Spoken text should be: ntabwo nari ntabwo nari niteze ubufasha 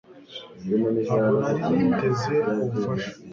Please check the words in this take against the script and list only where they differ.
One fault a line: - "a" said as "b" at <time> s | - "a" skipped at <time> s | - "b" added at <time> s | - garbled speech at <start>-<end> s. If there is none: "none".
- "ntabwo nari" skipped at 1.6 s